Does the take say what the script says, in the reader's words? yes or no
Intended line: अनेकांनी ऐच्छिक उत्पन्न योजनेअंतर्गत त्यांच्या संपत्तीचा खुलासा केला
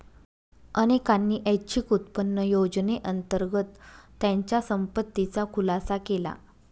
yes